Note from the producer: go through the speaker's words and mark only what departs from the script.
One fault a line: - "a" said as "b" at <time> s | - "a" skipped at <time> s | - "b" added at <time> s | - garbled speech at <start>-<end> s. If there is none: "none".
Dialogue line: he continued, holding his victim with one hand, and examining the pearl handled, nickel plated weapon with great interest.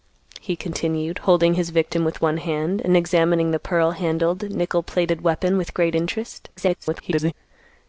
- garbled speech at 6.6-7.3 s